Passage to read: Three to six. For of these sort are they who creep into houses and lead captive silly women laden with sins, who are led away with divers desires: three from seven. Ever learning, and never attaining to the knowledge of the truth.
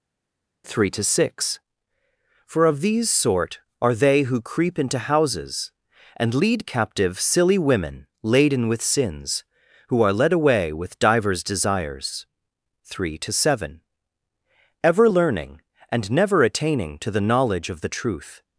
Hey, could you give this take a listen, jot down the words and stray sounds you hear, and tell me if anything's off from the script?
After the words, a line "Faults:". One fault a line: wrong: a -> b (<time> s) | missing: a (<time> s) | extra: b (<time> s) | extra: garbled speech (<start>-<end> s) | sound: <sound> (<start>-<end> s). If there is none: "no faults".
Three to six. For of these sort are they who creep into houses and lead captive silly women laden with sins, who are led away with divers desires: three to seven. Ever learning, and never attaining to the knowledge of the truth.
Faults:
wrong: from -> to (13.2 s)